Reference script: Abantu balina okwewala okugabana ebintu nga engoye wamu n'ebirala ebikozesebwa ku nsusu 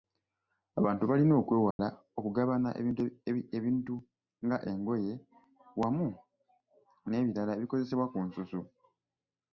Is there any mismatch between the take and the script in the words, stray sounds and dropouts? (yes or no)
yes